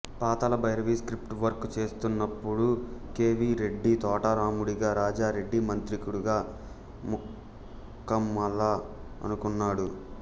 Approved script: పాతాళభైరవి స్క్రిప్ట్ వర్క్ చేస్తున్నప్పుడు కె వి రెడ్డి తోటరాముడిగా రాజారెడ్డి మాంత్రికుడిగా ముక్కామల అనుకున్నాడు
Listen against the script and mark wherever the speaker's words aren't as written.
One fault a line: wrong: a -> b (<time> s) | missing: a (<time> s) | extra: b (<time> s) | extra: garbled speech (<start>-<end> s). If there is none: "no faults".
no faults